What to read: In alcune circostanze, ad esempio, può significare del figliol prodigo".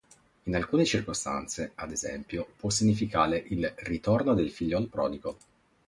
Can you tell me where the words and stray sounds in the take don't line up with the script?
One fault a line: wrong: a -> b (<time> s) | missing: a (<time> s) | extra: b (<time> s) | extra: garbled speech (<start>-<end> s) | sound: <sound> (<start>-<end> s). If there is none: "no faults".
extra: il ritorno (3.4 s)